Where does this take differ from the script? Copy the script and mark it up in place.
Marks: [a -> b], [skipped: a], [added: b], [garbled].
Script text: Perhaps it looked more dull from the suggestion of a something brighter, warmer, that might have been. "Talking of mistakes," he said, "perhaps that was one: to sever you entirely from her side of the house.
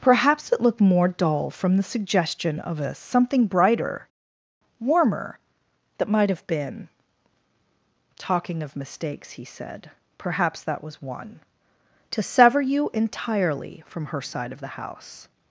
Perhaps it looked more dull from the suggestion of a something brighter, warmer, that might have been. "Talking of mistakes," he said, "perhaps that was one: to sever you entirely from her side of the house.